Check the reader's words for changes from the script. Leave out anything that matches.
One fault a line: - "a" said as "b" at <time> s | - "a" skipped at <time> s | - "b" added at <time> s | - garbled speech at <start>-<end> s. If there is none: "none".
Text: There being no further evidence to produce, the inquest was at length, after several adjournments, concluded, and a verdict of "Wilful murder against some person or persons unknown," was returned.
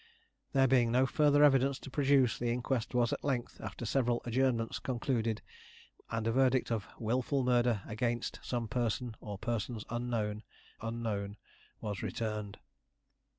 - "unknown" added at 10.8 s